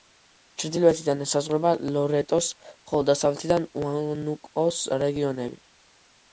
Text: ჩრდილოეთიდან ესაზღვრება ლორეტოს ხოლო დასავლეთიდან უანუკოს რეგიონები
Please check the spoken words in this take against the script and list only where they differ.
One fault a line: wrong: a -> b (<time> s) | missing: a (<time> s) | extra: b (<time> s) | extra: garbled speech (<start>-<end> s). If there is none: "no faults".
no faults